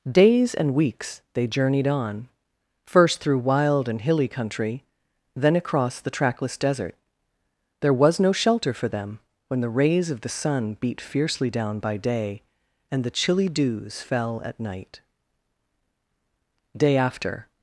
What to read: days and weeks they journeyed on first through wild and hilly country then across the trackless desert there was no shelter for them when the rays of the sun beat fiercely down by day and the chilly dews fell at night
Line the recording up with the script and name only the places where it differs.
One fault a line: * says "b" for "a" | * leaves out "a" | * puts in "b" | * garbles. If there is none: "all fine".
* puts in "day after"